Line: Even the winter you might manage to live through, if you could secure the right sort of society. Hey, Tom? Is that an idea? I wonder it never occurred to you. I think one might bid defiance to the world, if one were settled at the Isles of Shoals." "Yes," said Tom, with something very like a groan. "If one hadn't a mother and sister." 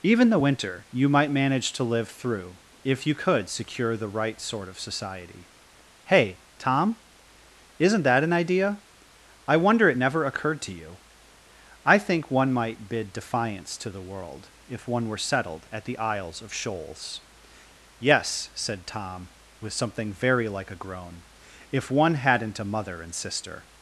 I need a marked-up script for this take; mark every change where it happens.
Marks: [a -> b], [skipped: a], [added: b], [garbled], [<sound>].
Even the winter you might manage to live through, if you could secure the right sort of society. Hey, Tom? [Is -> Isn't] that an idea? I wonder it never occurred to you. I think one might bid defiance to the world, if one were settled at the Isles of Shoals." "Yes," said Tom, with something very like a groan. "If one hadn't a mother and sister."